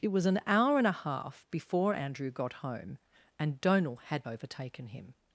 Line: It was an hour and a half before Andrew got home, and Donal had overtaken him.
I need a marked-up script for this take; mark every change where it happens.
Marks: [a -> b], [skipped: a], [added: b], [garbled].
It was an hour and a half before Andrew got home, and Donal had overtaken him.